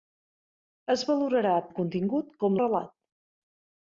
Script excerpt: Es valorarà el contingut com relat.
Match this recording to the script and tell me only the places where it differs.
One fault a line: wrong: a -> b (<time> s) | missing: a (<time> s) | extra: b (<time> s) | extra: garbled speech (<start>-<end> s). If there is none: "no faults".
no faults